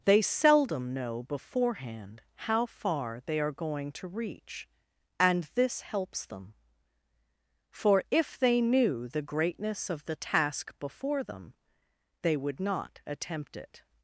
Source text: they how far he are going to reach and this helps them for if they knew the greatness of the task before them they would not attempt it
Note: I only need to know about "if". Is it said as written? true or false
true